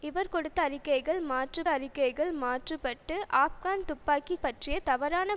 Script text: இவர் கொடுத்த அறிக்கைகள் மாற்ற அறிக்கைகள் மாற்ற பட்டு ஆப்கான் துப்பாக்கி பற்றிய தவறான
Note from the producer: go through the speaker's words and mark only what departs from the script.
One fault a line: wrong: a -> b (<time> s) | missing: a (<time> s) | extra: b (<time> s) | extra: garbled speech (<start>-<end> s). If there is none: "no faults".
no faults